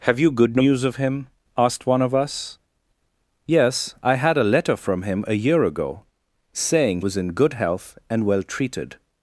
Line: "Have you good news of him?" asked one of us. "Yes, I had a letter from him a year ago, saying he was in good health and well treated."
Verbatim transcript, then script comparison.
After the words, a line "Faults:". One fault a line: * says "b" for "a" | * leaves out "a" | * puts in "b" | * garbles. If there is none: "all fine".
"Have you good news of him?" asked one of us. "Yes, I had a letter from him a year ago, saying was in good health and well treated."
Faults:
* leaves out "he"